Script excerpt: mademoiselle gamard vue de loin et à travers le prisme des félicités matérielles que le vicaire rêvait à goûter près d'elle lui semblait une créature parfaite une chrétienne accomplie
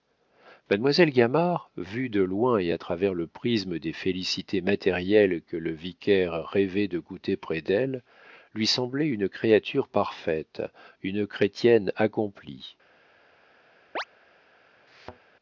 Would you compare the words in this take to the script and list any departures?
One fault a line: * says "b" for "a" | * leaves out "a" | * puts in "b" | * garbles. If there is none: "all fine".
* says "de" for "à"